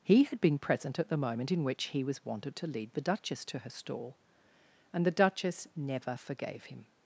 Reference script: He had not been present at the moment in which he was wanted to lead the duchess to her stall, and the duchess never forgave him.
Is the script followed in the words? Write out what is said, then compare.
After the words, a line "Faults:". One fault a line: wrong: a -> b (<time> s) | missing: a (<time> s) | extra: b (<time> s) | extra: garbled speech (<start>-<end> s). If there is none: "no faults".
He had been present at the moment in which he was wanted to lead the duchess to her stall, and the duchess never forgave him.
Faults:
missing: not (0.4 s)